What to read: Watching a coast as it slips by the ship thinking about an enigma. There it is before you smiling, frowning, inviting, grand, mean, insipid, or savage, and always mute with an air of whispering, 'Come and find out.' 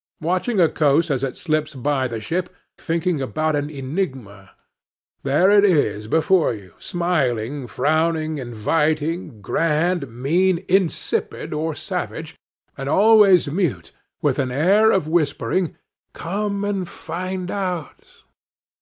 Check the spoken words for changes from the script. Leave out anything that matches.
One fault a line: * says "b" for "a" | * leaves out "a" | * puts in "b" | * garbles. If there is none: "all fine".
all fine